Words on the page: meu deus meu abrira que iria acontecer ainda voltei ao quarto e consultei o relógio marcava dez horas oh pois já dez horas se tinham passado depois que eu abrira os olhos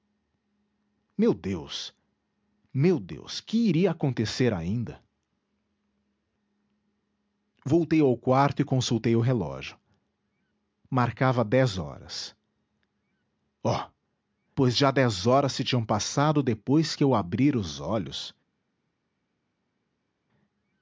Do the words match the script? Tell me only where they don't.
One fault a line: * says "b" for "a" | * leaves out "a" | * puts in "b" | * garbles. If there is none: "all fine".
* says "deus" for "abrira"